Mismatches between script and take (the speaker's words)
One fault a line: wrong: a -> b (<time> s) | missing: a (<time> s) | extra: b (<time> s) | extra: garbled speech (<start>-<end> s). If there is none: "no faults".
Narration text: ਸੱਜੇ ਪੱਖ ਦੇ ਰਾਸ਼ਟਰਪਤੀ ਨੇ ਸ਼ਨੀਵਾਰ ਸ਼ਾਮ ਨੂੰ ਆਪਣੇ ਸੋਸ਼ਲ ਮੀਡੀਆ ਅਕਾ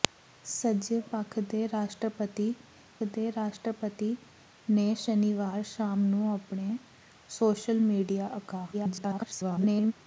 extra: ਦੇ ਰਾਸ਼ਟਰਪਤੀ (3.1 s)
extra: garbled speech (8.7-9.9 s)